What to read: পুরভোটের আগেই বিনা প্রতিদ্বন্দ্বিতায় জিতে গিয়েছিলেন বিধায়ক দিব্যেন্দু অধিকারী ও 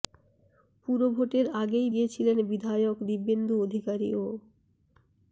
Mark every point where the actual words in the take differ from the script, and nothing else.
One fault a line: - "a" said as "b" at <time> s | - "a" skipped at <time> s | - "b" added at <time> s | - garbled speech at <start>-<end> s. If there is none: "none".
- "বিনা প্রতিদ্বন্দ্বিতায় জিতে" skipped at 1.9 s